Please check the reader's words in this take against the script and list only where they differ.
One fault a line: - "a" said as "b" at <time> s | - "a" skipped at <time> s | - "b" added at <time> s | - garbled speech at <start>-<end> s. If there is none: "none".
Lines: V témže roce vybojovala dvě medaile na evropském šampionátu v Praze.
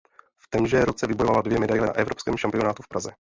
none